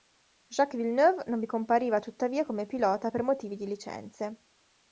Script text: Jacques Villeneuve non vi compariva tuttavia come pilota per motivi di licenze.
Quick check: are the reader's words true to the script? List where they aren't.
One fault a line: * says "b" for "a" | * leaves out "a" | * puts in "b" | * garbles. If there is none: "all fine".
all fine